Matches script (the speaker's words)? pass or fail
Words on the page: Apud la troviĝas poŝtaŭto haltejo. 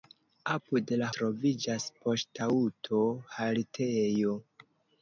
pass